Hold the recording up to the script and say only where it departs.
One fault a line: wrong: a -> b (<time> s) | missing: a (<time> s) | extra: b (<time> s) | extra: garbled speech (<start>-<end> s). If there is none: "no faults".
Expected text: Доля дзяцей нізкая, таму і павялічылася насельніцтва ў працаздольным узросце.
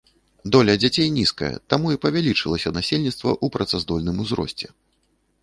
no faults